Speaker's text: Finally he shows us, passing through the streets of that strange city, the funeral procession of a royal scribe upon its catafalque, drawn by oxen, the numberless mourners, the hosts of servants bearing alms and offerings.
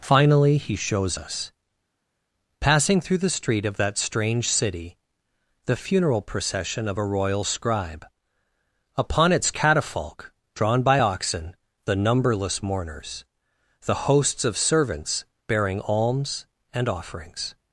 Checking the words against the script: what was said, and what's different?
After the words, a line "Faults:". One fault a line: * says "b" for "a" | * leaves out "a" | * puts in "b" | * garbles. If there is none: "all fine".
Finally he shows us, passing through the street of that strange city, the funeral procession of a royal scribe upon its catafalque, drawn by oxen, the numberless mourners, the hosts of servants bearing alms and offerings.
Faults:
* says "street" for "streets"